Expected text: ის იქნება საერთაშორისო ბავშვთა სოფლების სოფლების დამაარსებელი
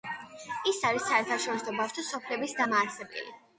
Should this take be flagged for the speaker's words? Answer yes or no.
yes